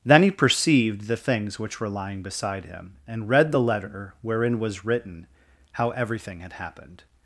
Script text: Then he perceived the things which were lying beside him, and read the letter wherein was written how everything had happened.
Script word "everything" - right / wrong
right